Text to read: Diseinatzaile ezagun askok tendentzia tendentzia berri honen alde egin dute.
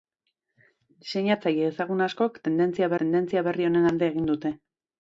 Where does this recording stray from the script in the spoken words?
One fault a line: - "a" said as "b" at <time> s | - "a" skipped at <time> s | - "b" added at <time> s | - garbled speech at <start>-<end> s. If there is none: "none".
none